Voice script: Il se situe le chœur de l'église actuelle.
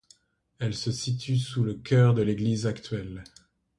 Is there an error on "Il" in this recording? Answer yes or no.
yes